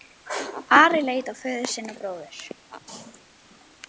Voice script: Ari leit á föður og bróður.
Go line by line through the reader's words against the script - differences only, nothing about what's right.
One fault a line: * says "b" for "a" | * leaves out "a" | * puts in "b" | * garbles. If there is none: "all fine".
* puts in "sinn"